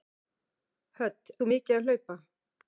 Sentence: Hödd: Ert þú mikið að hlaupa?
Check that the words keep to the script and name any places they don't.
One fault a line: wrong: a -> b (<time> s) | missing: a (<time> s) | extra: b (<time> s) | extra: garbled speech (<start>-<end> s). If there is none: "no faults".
missing: Ert (1.3 s)